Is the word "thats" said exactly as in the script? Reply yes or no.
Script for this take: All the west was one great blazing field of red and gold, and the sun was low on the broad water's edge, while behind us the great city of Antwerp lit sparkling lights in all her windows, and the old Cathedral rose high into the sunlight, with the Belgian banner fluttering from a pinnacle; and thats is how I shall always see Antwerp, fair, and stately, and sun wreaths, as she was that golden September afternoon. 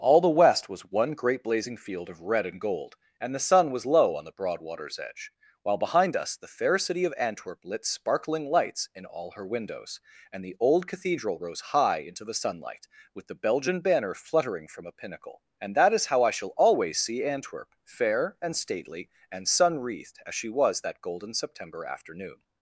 no